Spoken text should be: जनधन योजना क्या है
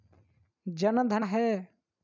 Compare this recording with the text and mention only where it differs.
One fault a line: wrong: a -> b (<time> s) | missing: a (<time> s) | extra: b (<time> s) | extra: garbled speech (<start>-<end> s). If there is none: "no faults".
missing: योजना क्या (1.2 s)